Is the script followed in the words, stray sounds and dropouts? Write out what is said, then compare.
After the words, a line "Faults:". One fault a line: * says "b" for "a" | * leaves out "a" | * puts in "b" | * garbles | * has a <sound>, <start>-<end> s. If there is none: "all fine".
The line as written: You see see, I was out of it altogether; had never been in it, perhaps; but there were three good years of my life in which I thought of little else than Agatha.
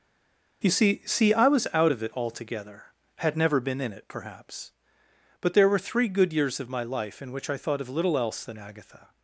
You see see, I was out of it altogether; had never been in it, perhaps; but there were three good years of my life in which I thought of little else than Agatha.
Faults:
all fine